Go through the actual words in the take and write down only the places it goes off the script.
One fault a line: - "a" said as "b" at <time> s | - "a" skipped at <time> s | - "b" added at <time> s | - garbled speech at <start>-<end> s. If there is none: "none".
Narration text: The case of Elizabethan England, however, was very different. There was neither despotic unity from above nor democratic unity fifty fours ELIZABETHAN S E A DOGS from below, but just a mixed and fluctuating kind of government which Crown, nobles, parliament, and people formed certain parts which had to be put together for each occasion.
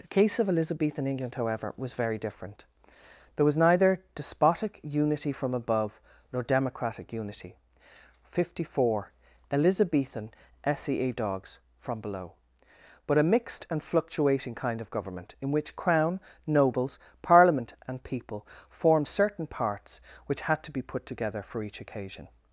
- "fours" said as "four" at 8.7 s
- "just" skipped at 13.2 s
- "in" added at 15.4 s